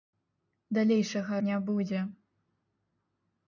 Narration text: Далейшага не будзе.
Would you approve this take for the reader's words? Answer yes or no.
yes